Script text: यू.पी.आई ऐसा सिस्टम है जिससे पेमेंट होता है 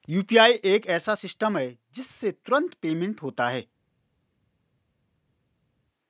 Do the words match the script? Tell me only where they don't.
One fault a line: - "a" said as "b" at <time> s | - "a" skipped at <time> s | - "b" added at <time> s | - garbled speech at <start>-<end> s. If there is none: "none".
- "एक" added at 0.7 s
- "तुरंत" added at 2.3 s